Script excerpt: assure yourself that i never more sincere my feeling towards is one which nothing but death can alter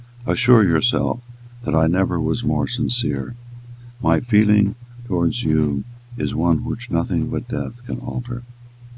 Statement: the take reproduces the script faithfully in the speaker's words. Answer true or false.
false